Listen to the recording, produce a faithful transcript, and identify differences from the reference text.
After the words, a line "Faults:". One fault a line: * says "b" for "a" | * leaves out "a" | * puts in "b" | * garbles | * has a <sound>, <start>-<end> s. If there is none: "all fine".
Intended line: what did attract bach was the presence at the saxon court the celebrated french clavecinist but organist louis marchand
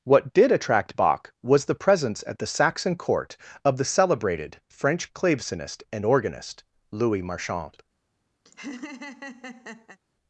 what did attract bach was the presence at the saxon court of the celebrated french clavecinist and organist louis marchand
Faults:
* puts in "of"
* says "and" for "but"
* has a laugh, 8.5-10.0 s